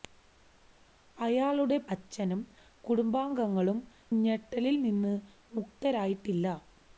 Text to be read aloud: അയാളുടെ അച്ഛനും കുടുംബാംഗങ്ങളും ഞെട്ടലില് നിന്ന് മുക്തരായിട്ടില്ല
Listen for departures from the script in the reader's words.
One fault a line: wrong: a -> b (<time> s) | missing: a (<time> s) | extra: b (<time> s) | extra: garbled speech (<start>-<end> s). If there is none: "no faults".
no faults